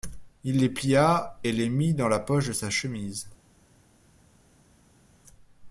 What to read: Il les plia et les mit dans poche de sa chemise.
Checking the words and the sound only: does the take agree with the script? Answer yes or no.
no